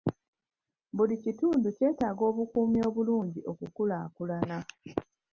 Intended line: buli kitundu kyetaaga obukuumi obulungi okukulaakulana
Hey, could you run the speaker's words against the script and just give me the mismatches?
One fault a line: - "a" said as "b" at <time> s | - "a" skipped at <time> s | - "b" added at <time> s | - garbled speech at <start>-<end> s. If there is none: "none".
none